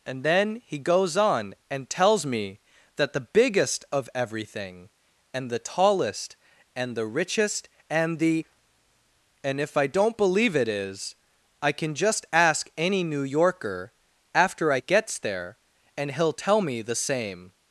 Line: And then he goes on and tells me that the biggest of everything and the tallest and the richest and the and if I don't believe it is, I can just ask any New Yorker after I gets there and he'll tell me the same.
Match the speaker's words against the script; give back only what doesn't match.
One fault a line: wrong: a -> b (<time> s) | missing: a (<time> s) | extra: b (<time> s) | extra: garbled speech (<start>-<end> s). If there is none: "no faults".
no faults